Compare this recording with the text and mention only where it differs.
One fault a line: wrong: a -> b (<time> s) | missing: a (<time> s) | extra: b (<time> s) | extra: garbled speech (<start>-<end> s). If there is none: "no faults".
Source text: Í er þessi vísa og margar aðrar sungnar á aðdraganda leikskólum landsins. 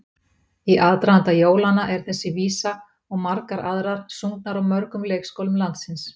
extra: aðdraganda jólanna (0.8 s)
wrong: aðdraganda -> mörgum (4.7 s)